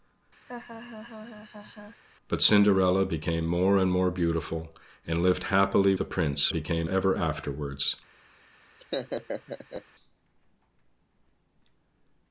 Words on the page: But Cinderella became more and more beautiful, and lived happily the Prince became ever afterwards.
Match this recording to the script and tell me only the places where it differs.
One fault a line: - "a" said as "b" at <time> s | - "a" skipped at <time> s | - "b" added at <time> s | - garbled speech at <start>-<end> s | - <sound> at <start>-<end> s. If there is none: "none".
- laugh at 0.5-2.0 s
- laugh at 8.8-9.9 s